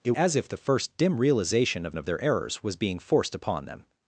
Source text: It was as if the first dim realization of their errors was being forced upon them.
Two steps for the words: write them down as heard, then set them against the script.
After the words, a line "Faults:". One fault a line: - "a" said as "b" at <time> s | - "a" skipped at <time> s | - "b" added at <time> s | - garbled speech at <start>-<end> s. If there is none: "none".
It as if the first dim realization of of their errors was being forced upon them.
Faults:
- "was" skipped at 0.1 s
- "of" added at 2.0 s